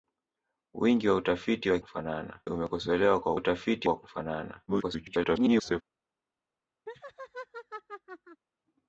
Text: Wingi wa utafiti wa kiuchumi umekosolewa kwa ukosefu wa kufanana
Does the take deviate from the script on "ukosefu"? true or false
true